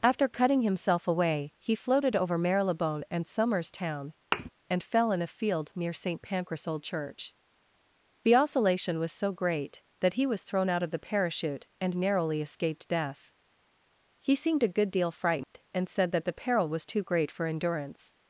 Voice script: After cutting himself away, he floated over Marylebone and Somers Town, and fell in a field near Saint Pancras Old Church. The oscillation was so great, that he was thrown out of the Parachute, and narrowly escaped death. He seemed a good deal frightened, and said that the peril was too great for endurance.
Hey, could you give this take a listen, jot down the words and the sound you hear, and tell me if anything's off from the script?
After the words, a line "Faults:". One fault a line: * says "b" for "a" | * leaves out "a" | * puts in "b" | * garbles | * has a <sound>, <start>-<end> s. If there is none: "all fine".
After cutting himself away, he floated over Marylebone and Somers Town, and fell in a field near Saint Pancras Old Church. The oscillation was so great, that he was thrown out of the Parachute, and narrowly escaped death. He seemed a good deal frightened, and said that the peril was too great for endurance.
Faults:
* has a thud, 4.3-4.5 s
* has a dropout, 15.4-15.5 s